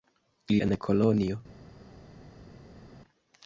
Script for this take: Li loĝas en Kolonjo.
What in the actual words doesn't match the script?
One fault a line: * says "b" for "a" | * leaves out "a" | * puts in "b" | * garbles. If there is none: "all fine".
* leaves out "loĝas"